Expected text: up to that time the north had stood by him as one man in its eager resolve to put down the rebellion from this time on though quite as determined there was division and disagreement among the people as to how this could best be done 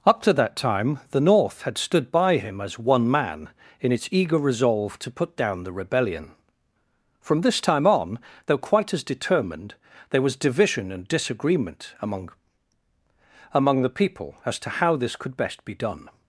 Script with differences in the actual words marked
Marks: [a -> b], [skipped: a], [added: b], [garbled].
up to that time the north had stood by him as one man in its eager resolve to put down the rebellion from this time on though quite as determined there was division and disagreement among [added: among] the people as to how this could best be done